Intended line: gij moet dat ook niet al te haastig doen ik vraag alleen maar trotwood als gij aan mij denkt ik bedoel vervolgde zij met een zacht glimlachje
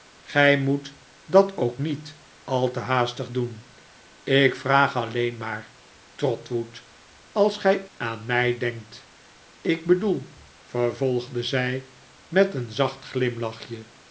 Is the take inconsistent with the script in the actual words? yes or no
no